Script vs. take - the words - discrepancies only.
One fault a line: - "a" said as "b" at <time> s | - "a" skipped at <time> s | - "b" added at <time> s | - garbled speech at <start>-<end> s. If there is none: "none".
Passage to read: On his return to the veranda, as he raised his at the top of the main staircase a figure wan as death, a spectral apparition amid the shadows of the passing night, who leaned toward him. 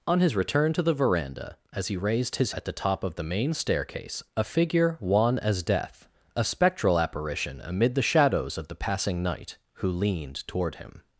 none